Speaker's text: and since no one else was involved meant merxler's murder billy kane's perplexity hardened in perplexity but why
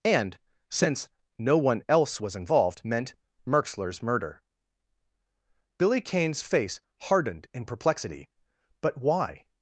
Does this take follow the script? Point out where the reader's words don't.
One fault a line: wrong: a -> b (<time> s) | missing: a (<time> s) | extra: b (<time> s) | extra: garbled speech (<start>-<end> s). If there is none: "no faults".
wrong: perplexity -> face (6.4 s)